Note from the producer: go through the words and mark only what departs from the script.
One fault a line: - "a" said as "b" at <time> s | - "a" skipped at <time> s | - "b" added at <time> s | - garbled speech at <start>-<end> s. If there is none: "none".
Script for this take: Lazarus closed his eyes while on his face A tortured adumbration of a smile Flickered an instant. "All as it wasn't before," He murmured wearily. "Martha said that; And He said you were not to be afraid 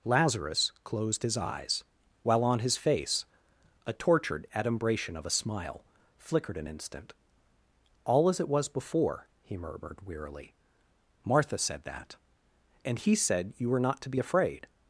- "wasn't" said as "was" at 8.5 s